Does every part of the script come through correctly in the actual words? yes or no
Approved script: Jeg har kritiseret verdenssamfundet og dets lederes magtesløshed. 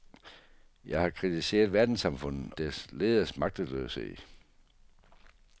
no